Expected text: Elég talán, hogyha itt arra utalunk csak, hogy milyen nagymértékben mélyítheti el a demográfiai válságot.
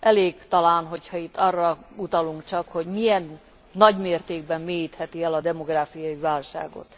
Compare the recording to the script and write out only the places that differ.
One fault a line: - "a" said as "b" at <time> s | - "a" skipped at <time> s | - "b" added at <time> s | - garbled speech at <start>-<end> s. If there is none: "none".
none